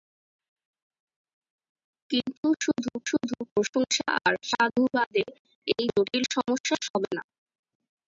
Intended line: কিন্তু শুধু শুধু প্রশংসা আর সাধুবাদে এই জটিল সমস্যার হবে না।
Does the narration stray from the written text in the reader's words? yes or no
no